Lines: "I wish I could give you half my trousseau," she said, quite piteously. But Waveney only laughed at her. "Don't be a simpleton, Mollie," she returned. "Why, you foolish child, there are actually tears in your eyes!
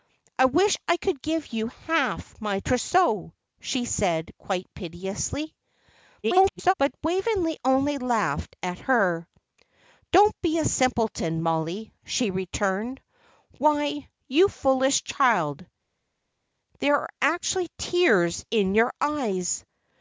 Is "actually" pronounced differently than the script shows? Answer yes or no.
no